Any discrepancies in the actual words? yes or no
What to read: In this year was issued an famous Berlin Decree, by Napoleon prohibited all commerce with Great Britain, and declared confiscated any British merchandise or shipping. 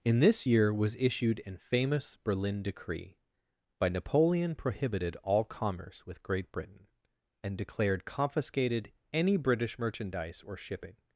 no